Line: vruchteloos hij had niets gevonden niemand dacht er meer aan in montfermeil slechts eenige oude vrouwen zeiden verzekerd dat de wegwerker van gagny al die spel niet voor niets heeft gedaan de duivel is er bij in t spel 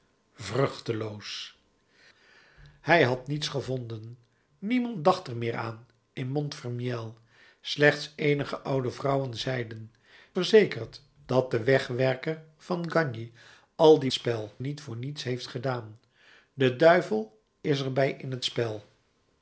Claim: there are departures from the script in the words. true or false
false